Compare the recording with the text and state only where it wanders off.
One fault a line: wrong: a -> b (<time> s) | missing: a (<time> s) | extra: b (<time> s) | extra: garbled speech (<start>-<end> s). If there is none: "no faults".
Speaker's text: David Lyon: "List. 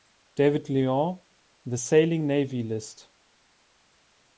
extra: The Sailing Navy (1.6 s)